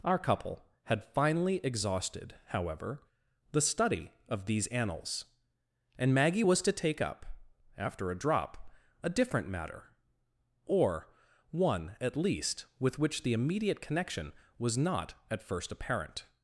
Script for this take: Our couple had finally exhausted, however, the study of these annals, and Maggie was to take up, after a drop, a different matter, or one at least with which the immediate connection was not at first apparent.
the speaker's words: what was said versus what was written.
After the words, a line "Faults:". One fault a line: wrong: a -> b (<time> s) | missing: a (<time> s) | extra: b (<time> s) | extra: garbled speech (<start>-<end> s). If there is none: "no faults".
Our couple had finally exhausted, however, the study of these annals, and Maggie was to take up, after a drop, a different matter, or one at least with which the immediate connection was not at first apparent.
Faults:
no faults